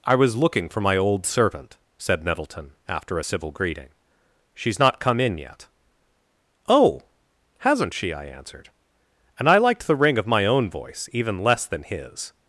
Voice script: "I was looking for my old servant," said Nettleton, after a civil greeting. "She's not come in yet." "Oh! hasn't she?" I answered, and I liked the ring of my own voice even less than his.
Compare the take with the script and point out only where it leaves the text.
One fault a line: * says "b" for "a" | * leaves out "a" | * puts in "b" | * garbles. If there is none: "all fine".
all fine